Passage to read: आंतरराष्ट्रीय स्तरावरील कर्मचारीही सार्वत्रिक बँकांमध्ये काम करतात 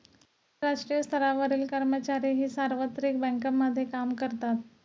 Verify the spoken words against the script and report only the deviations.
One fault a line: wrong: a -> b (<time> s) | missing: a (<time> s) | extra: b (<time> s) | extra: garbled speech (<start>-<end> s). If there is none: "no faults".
no faults